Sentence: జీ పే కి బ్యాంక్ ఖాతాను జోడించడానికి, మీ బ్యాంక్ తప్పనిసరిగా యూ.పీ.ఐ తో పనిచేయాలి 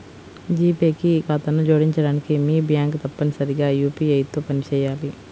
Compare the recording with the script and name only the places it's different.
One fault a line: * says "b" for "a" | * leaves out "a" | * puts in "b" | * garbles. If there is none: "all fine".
* leaves out "బ్యాంక్"